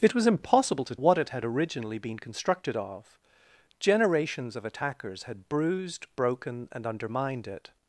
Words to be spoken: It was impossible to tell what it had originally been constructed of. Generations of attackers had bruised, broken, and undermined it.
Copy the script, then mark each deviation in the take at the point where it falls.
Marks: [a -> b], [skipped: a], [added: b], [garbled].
It was impossible to [skipped: tell] what it had originally been constructed of. Generations of attackers had bruised, broken, and undermined it.